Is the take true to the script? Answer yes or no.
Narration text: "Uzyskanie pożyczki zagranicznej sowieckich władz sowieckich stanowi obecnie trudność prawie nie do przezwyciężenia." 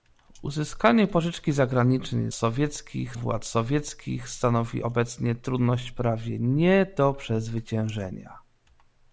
yes